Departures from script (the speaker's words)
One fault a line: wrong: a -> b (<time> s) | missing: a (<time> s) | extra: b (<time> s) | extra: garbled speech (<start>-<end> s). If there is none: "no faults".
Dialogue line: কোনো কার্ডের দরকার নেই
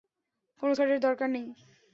no faults